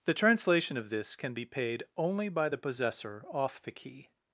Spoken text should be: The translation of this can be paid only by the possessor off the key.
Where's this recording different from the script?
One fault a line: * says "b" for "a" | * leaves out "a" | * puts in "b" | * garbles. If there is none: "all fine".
all fine